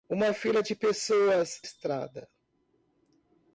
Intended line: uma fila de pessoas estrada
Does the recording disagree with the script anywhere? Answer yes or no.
no